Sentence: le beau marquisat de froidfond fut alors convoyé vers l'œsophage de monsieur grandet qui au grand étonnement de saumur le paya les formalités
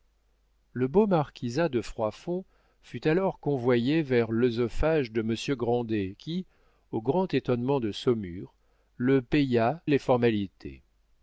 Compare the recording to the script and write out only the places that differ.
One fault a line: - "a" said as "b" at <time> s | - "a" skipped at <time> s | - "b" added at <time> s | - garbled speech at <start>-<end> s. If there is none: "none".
none